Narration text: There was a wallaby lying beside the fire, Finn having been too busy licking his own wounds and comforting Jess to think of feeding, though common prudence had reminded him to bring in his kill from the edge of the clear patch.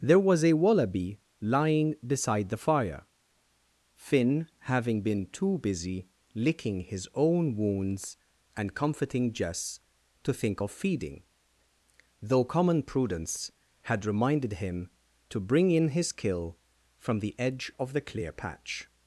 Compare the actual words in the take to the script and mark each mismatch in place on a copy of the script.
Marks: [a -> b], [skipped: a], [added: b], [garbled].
There was a wallaby lying beside the fire, Finn having been too busy licking his own wounds and comforting Jess to think of feeding, though common prudence had reminded him to bring in his kill from the edge of the clear patch.